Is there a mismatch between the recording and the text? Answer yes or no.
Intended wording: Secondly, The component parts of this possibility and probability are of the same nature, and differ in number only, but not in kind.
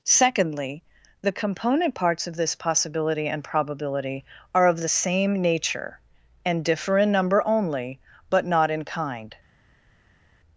no